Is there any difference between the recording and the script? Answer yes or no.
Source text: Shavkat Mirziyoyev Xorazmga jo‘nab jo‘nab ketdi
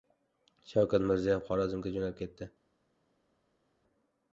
yes